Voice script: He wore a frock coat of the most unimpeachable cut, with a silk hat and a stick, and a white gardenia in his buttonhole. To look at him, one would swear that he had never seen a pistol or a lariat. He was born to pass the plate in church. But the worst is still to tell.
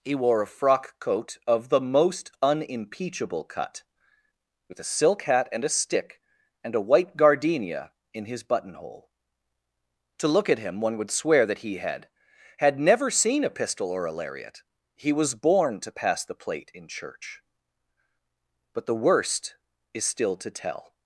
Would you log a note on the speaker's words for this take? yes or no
yes